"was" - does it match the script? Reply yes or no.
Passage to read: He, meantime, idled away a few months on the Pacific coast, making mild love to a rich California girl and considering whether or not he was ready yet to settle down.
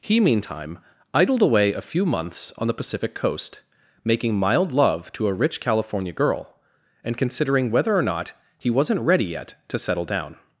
no